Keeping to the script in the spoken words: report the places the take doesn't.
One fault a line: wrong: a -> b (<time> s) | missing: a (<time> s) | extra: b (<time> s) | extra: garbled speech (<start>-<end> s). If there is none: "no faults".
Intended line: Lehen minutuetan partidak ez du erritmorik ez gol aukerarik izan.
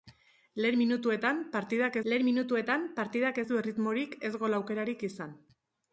extra: lehen minutuetan partidak (2.1 s)